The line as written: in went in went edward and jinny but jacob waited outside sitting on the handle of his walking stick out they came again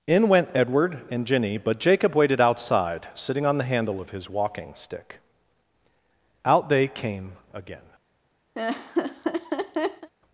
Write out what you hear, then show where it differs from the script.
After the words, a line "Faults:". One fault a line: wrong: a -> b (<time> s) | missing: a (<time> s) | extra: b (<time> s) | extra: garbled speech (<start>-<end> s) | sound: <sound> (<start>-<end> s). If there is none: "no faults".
in went edward and jinny but jacob waited outside sitting on the handle of his walking stick out they came again
Faults:
missing: in went (0.5 s)
sound: laugh (8.5-10.1 s)